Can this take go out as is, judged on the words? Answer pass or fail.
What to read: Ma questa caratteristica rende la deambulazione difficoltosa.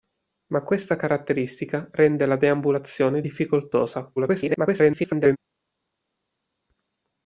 fail